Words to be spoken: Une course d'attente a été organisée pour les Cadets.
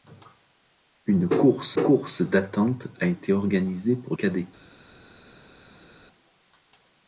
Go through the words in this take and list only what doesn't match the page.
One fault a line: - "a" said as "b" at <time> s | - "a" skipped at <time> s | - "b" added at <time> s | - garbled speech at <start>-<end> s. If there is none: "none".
- "course" added at 1.8 s
- "les" skipped at 4.1 s